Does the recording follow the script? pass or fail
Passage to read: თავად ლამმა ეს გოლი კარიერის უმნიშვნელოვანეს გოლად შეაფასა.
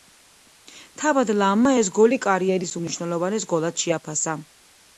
pass